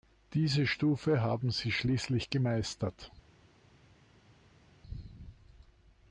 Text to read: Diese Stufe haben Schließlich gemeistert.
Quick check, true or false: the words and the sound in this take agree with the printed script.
false